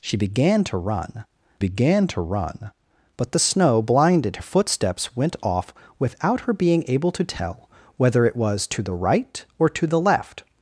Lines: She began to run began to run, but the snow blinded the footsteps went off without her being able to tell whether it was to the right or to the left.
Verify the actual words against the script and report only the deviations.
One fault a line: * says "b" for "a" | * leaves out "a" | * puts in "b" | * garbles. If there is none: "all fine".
all fine